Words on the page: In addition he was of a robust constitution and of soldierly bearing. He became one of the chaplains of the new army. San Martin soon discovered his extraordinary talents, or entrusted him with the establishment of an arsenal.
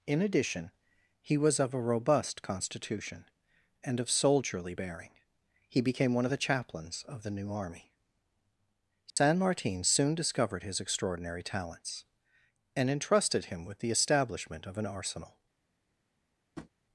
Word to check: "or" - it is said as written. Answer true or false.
false